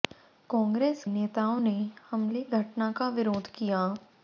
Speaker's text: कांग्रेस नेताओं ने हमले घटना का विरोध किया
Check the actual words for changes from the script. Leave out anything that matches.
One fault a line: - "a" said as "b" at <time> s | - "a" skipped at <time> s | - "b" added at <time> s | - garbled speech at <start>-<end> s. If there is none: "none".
none